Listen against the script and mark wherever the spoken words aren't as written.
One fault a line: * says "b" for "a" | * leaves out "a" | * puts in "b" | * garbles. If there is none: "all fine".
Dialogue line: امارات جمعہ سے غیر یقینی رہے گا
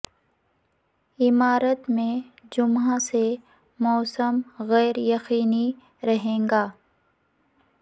* puts in "میں"
* puts in "موسم"